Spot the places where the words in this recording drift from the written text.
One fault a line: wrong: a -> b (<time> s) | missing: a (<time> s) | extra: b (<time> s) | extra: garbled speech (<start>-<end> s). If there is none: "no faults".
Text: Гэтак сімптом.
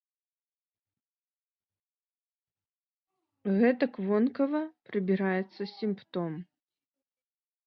extra: вонкава прыбіраецца (4.1 s)